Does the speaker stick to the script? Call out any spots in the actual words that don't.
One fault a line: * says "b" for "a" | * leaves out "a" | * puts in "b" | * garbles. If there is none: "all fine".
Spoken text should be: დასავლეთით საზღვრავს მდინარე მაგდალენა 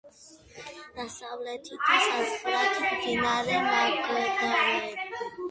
all fine